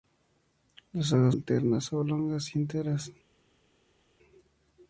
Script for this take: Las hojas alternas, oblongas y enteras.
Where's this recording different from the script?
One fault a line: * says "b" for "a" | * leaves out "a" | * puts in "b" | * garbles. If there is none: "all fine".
all fine